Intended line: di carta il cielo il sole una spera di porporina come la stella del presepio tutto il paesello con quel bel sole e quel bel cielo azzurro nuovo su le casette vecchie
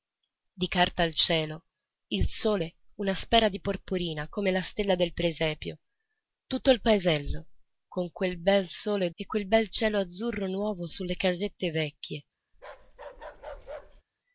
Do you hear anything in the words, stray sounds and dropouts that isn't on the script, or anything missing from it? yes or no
yes